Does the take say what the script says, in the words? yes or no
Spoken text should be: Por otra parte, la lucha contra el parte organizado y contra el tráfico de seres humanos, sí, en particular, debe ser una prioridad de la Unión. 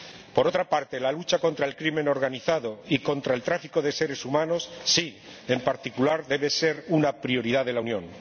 no